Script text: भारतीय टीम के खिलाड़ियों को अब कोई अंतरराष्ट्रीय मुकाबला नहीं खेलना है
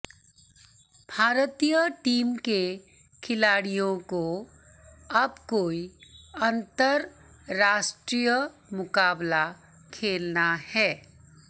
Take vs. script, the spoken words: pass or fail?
fail